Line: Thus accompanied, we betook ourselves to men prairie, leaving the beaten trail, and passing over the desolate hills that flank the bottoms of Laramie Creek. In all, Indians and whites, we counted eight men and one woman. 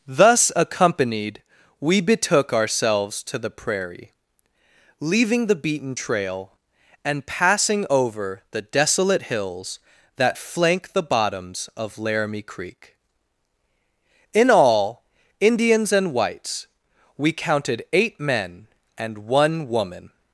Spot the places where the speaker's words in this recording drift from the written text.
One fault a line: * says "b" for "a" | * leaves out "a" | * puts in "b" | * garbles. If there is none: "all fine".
* says "the" for "men"